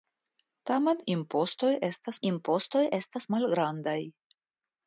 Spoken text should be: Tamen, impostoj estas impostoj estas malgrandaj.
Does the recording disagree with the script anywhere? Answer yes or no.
no